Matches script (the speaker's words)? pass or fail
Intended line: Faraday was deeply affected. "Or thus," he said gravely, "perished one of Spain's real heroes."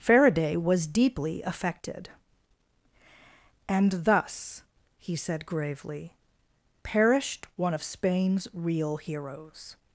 fail